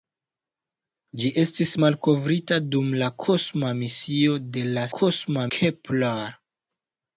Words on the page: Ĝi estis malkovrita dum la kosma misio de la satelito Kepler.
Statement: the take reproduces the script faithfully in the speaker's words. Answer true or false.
false